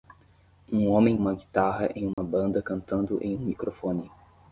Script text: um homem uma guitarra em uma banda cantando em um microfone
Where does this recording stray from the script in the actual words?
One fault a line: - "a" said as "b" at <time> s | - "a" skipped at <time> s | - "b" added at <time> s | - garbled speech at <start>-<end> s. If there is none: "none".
none